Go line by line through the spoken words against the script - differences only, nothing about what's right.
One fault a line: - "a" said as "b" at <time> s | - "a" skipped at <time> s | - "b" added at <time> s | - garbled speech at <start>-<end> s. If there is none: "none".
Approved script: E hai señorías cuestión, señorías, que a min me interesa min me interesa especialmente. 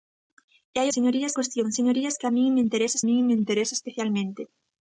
none